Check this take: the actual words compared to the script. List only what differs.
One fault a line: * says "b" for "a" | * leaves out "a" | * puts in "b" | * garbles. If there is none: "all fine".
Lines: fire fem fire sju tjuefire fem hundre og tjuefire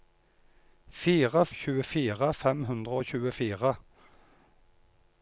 * leaves out "fem fire sju"